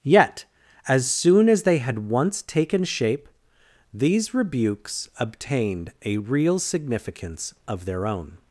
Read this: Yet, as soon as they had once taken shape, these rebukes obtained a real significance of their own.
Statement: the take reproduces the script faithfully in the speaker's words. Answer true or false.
true